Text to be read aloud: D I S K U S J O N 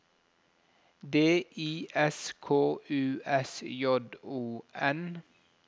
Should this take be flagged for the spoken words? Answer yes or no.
no